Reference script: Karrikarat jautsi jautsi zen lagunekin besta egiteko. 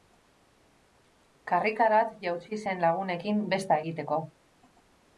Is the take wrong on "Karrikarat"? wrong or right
right